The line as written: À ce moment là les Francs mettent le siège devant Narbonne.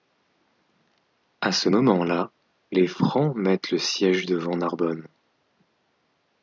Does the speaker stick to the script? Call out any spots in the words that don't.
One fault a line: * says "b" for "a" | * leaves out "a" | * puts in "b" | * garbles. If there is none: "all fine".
all fine